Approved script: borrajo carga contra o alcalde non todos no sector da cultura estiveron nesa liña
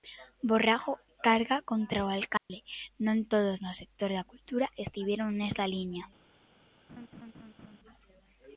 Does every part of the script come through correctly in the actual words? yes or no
yes